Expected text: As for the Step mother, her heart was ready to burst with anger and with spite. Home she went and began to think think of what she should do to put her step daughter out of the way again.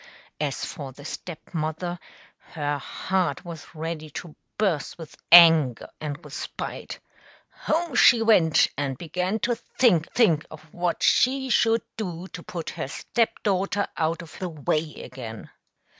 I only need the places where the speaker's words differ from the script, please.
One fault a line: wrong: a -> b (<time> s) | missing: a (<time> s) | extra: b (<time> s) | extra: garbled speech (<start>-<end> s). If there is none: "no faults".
no faults